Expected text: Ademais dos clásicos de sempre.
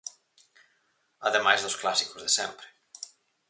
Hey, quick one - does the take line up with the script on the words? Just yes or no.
yes